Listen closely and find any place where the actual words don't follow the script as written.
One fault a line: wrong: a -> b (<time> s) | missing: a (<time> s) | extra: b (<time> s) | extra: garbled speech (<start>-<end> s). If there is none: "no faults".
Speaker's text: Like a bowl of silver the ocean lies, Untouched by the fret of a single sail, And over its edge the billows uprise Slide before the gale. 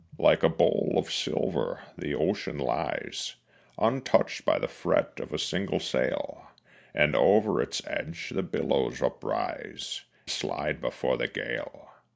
no faults